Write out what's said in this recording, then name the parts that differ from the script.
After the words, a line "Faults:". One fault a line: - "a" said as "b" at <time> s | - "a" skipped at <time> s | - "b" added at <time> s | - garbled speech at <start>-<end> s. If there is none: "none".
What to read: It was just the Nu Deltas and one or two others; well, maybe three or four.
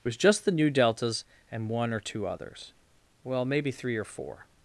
It was just the Nu Deltas and one or two others; well, maybe three or four.
Faults:
none